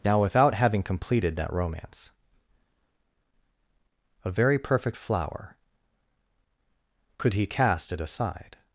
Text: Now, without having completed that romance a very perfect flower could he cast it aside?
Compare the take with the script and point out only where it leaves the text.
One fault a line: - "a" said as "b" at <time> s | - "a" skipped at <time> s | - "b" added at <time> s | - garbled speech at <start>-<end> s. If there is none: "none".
none